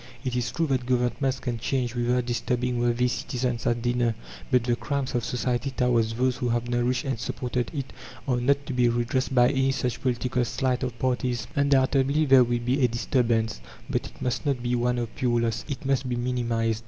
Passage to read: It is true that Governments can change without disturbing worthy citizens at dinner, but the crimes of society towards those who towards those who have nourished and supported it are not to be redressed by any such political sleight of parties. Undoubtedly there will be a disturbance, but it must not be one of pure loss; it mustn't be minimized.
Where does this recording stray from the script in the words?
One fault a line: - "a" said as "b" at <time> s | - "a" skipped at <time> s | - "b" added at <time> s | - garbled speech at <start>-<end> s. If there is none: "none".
- "towards those who" skipped at 6.5 s
- "mustn't" said as "must" at 15.8 s